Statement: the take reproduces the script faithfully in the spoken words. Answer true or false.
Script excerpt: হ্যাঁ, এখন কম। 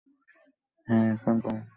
true